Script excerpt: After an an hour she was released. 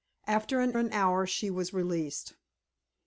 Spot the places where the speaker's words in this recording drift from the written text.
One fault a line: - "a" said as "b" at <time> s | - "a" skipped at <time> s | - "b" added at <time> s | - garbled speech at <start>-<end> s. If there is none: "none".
none